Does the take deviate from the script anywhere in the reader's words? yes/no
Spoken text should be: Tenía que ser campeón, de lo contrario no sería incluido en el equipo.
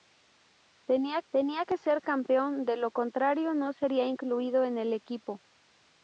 yes